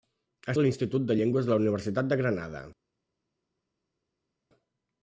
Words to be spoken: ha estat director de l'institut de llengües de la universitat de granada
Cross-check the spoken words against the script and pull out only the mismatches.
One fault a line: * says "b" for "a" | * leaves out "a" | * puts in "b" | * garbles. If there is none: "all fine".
* leaves out "estat director"